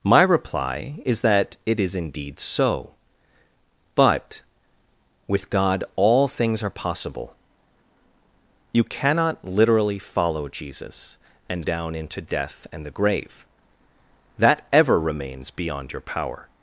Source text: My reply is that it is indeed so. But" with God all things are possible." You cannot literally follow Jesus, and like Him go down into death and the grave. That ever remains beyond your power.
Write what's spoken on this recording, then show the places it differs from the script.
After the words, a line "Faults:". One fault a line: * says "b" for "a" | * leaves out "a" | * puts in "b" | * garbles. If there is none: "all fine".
My reply is that it is indeed so. But" with God all things are possible." You cannot literally follow Jesus, and down into death and the grave. That ever remains beyond your power.
Faults:
* leaves out "like Him go"